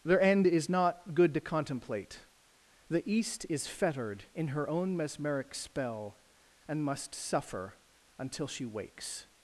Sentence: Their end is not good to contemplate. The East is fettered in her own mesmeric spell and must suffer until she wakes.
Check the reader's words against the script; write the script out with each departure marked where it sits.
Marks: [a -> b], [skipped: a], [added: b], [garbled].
Their end is not good to contemplate. The East is fettered in her own mesmeric spell and must suffer until she wakes.